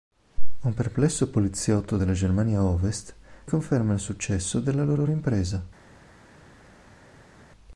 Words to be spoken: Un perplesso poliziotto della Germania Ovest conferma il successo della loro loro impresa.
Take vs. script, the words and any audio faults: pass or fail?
pass